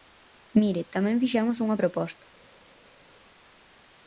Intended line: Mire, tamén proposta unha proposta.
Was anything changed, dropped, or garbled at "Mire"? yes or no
no